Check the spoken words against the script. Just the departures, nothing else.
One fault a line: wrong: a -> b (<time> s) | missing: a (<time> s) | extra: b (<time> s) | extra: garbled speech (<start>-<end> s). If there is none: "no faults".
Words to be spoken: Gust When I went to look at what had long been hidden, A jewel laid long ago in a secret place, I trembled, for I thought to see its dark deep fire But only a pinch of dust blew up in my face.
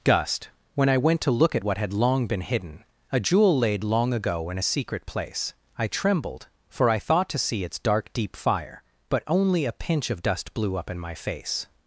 no faults